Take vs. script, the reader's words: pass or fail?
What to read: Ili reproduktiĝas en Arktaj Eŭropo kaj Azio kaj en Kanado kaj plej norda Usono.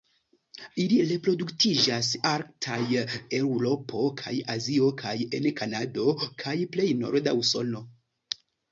fail